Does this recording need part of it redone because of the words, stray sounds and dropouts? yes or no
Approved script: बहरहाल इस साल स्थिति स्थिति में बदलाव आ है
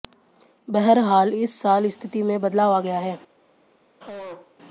yes